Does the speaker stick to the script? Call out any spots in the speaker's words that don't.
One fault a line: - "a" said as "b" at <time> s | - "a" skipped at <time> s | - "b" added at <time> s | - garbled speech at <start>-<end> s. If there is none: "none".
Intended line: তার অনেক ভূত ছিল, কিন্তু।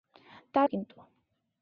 - "অনেক ভূত ছিল" skipped at 0.7 s